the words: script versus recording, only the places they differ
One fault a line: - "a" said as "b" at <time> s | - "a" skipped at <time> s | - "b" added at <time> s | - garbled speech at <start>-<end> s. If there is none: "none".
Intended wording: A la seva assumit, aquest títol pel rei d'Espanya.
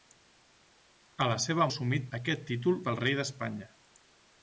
none